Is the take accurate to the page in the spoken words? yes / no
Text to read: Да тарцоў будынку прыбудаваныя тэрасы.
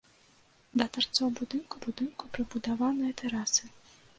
no